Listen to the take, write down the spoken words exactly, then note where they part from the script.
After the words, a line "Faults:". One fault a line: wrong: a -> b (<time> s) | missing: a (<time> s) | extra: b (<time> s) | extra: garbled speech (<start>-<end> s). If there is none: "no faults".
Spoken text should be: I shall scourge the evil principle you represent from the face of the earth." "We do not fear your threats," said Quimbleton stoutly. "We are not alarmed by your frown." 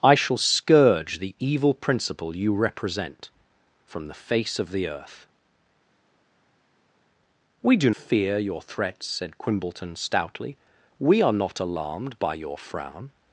I shall scourge the evil principle you represent from the face of the earth." "We do fear your threats," said Quimbleton stoutly. "We are not alarmed by your frown."
Faults:
missing: not (7.9 s)